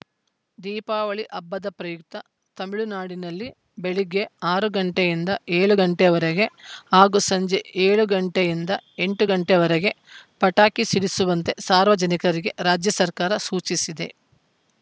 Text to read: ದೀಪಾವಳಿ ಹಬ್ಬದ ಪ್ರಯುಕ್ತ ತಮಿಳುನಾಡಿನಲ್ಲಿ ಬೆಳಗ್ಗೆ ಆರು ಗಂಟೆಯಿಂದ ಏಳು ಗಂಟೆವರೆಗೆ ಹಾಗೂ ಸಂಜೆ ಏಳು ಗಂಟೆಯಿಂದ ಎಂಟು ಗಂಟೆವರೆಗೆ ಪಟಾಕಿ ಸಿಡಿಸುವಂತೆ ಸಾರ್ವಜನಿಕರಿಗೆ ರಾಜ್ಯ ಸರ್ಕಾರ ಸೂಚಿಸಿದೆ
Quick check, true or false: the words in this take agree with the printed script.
true